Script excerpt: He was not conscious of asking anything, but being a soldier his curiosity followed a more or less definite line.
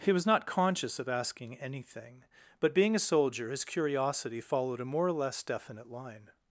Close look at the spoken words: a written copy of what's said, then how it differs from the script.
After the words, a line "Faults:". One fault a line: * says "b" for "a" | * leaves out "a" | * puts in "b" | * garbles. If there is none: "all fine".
He was not conscious of asking anything, but being a soldier his curiosity followed a more or less definite line.
Faults:
all fine